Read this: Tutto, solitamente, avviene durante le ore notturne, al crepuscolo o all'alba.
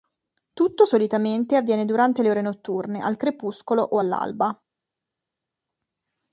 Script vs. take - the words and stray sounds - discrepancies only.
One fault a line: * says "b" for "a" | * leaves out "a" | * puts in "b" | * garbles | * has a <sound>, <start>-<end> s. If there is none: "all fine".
all fine